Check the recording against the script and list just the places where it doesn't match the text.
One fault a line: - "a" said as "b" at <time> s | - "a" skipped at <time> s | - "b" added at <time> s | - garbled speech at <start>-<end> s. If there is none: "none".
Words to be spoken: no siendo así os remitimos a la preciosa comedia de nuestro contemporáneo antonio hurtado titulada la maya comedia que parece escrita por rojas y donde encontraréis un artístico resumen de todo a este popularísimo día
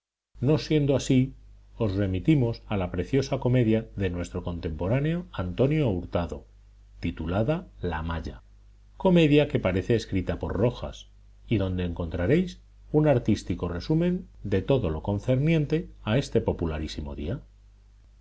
- "lo concerniente" added at 14.9 s